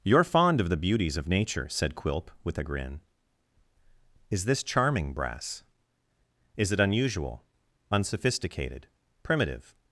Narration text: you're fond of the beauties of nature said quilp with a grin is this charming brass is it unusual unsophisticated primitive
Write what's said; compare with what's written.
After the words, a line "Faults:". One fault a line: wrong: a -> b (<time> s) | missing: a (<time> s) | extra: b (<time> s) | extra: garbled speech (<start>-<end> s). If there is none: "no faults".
you're fond of the beauties of nature said quilp with a grin is this charming brass is it unusual unsophisticated primitive
Faults:
no faults